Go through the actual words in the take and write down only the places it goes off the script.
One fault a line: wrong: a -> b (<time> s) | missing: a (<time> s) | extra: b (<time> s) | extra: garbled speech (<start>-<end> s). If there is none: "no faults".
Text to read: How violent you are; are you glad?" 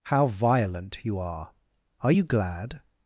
no faults